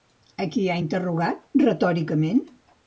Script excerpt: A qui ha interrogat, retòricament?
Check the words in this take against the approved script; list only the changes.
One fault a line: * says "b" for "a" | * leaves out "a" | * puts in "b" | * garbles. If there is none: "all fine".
all fine